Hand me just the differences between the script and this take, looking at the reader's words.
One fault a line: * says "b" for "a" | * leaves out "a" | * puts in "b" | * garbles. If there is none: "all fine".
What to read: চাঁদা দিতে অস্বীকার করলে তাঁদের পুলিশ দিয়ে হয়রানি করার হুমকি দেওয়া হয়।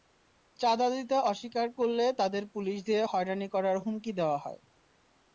all fine